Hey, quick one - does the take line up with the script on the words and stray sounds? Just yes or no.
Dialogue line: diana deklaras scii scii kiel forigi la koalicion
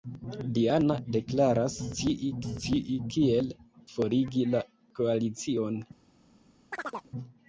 no